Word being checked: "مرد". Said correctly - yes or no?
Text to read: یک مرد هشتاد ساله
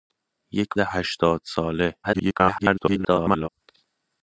no